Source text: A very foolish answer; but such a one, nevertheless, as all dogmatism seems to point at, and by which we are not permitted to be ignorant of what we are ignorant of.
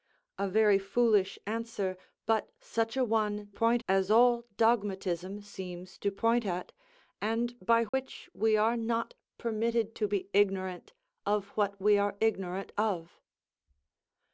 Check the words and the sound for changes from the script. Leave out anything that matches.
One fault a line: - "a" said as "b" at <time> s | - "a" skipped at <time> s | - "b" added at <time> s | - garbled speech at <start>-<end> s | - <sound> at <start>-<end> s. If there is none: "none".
- "nevertheless" said as "point" at 3.5 s
- dropout at 7.9-7.9 s